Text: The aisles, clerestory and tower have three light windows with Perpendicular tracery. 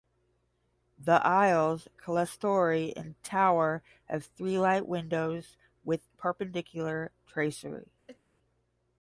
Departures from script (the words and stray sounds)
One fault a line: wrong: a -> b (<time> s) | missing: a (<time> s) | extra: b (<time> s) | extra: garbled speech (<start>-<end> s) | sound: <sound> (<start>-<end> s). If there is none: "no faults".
sound: sneeze (8.1-8.2 s)